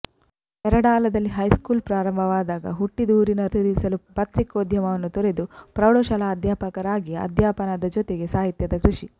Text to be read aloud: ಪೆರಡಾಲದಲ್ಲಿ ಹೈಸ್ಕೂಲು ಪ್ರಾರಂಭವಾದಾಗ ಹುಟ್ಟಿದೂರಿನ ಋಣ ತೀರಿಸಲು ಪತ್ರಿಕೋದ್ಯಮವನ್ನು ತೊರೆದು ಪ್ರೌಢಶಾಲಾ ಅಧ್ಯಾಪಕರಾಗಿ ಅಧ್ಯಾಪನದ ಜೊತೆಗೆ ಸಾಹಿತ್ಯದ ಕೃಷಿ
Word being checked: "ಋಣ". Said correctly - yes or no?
no